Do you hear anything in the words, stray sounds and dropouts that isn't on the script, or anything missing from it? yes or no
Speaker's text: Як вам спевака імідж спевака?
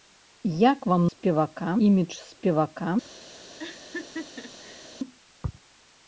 yes